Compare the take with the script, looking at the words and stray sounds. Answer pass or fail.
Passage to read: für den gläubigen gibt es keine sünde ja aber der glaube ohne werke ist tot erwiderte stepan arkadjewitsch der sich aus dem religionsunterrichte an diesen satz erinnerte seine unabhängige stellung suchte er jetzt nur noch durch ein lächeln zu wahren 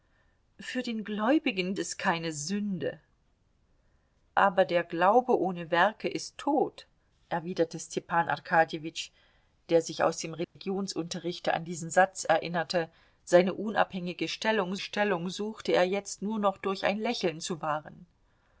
fail